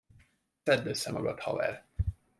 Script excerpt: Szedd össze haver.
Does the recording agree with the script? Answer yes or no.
no